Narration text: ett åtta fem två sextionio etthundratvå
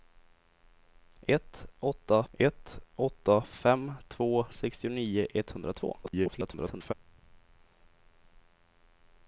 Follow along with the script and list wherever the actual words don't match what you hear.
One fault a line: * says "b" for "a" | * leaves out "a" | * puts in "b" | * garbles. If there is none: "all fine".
* puts in "ett åtta"
* garbles